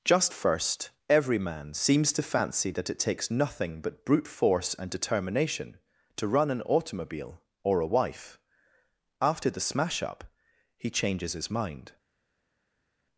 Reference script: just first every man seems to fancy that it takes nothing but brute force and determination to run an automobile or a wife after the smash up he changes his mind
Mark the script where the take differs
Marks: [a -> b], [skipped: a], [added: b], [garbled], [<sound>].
just first every man seems to fancy that it takes nothing but brute force and determination to run an automobile or a wife after the smash up he changes his mind